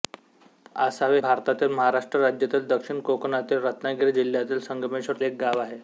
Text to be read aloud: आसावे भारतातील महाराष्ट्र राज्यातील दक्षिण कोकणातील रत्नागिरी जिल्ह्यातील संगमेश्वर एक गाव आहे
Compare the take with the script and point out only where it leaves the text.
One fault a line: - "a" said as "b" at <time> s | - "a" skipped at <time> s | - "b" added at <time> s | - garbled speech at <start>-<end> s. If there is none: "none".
none